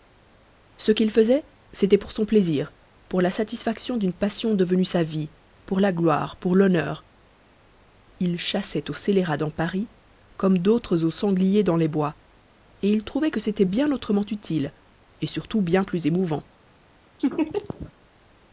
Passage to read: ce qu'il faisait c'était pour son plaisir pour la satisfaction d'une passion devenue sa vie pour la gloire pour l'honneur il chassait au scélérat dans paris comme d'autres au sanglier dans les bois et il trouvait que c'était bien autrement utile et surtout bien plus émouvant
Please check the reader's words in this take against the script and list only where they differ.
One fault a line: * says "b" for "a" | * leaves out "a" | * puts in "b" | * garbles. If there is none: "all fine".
all fine